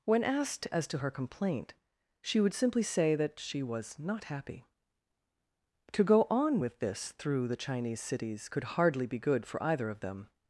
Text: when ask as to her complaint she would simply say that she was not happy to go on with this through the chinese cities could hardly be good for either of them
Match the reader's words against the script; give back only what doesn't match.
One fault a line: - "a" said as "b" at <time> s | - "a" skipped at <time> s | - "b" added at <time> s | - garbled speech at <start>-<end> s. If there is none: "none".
- "ask" said as "asked" at 0.2 s